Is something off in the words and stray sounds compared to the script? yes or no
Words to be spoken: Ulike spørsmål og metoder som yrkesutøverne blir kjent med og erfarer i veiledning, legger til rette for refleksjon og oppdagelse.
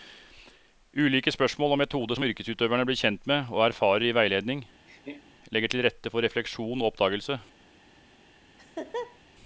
yes